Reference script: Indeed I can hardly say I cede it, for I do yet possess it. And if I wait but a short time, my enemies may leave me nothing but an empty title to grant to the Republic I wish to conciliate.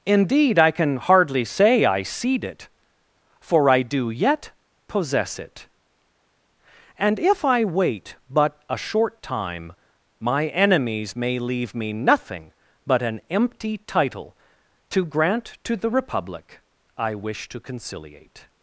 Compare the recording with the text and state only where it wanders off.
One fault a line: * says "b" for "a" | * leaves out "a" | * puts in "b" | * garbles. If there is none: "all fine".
all fine